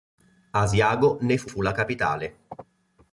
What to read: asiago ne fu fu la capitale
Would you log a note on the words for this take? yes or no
no